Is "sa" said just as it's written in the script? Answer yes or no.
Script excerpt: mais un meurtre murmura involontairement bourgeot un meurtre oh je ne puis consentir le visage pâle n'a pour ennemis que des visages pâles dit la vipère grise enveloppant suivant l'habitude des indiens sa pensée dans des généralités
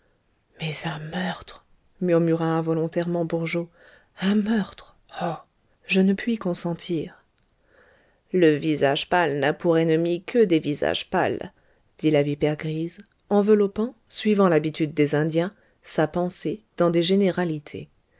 yes